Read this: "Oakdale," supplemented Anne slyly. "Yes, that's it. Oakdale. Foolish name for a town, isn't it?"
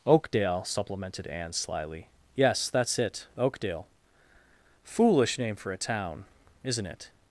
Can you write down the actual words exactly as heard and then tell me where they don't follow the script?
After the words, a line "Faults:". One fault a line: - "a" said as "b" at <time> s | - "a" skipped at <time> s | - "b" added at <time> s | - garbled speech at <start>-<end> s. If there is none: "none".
"Oakdale," supplemented Anne slyly. "Yes, that's it. Oakdale. Foolish name for a town, isn't it?"
Faults:
none